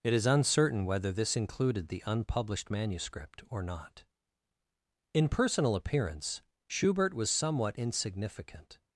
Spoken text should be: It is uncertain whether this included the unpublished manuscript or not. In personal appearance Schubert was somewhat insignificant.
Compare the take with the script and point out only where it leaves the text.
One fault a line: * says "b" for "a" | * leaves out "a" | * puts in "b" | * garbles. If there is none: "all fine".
all fine